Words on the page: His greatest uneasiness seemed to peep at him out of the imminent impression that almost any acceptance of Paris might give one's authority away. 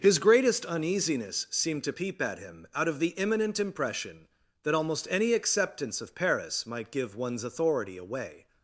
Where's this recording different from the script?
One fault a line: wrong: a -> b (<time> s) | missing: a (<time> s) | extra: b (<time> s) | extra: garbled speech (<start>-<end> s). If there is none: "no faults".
no faults